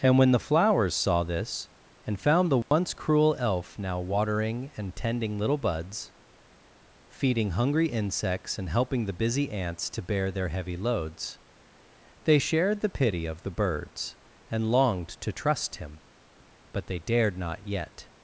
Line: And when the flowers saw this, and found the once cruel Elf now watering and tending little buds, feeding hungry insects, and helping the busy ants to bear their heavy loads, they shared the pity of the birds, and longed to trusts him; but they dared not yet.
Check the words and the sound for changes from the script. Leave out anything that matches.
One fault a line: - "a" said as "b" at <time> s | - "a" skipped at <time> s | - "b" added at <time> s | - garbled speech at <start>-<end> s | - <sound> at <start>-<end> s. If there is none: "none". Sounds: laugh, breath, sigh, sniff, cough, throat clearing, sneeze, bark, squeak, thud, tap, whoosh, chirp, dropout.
- dropout at 2.6-2.7 s
- "trusts" said as "trust" at 15.3 s